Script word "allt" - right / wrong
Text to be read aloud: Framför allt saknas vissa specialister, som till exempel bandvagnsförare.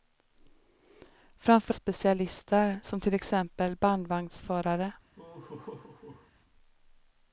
wrong